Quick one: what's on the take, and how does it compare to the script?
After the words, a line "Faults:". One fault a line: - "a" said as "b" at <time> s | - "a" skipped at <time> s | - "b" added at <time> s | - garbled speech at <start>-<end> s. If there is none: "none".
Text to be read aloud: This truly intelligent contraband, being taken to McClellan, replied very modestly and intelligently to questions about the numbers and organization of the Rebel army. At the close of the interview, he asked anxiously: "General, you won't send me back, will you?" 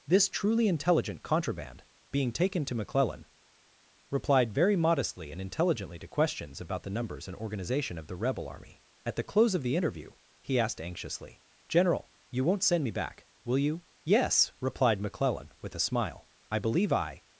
This truly intelligent contraband, being taken to McClellan, replied very modestly and intelligently to questions about the numbers and organization of the Rebel army. At the close of the interview, he asked anxiously: "General, you won't send me back, will you?" "Yes," replied McClellan, with a smile, "I believe I
Faults:
- "Yes replied McClellan with a smile I believe I" added at 14.0 s